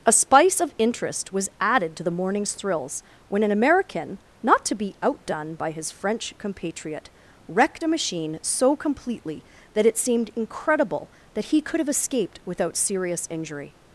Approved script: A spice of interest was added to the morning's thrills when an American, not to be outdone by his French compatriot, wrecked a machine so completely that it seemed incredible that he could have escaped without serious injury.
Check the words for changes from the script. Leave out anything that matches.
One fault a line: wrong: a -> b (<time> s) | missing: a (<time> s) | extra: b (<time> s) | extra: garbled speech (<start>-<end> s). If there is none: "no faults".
no faults